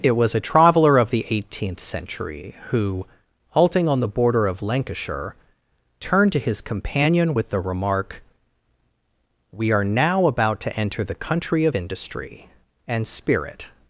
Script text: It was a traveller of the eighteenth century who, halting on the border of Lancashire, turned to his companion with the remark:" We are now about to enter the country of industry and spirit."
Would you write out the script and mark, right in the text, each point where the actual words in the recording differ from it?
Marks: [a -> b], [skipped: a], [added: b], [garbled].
It was a traveller of the eighteenth century who, halting on the border of Lancashire, turned to his companion with the remark:" We are now about to enter the country of industry and spirit."